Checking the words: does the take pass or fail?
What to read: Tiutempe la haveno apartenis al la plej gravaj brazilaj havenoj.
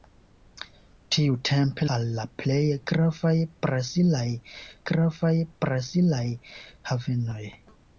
fail